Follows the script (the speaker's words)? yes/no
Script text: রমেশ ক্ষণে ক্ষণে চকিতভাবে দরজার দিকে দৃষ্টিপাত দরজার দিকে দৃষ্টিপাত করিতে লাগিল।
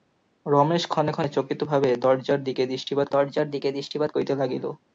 yes